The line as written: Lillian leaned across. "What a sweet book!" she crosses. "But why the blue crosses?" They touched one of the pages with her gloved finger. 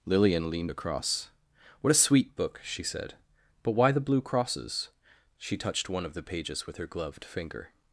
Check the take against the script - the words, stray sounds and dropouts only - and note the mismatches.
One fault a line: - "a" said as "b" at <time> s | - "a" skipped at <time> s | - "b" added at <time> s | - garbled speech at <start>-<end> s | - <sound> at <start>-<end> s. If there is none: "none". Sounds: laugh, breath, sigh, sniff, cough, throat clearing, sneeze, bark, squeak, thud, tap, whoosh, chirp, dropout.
- "crosses" said as "said" at 2.8 s
- "They" said as "She" at 5.4 s